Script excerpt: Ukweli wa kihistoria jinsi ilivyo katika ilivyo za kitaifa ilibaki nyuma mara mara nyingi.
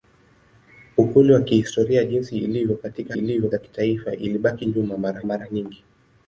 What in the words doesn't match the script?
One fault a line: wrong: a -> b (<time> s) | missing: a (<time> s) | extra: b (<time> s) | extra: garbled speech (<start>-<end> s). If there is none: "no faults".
no faults